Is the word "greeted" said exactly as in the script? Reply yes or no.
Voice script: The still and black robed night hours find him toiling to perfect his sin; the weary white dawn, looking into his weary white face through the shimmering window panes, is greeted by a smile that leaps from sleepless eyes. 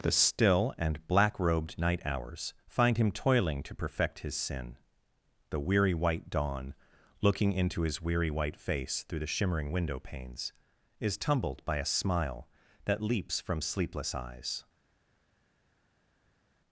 no